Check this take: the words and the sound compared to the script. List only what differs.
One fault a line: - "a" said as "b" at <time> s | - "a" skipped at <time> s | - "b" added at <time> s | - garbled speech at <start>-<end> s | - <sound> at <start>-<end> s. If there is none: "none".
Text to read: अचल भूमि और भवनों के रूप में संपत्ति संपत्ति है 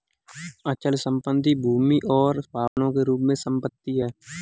- "संपत्ति" added at 1.0 s
- dropout at 2.7-2.8 s
- "संपत्ति" skipped at 4.0 s